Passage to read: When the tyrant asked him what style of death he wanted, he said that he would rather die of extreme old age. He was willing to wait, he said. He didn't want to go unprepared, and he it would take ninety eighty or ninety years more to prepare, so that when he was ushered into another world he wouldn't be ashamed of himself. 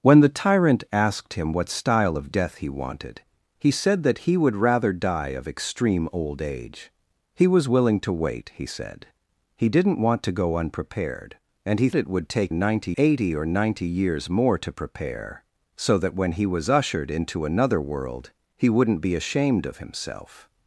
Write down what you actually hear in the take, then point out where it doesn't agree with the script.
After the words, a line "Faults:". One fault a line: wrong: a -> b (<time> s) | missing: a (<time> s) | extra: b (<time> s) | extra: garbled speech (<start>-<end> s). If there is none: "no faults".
When the tyrant asked him what style of death he wanted, he said that he would rather die of extreme old age. He was willing to wait, he said. He didn't want to go unprepared, and he it would take ninety eighty or ninety years more to prepare, so that when he was ushered into another world he wouldn't be ashamed of himself.
Faults:
no faults